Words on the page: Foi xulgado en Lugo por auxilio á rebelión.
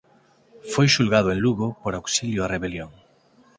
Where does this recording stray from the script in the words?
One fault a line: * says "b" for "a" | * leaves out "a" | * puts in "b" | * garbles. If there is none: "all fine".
all fine